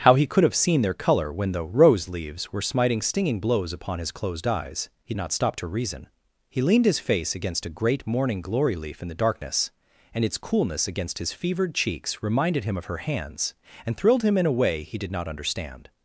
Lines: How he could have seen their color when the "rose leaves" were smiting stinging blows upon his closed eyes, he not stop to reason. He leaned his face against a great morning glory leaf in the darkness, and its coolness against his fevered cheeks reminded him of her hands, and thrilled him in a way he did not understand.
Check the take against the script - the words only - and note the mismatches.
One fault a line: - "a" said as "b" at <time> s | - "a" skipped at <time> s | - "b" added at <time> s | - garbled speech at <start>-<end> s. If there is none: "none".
none